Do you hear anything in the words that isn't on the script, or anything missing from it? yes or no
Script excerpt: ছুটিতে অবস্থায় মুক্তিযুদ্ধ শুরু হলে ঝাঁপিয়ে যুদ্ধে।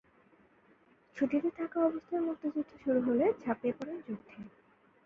yes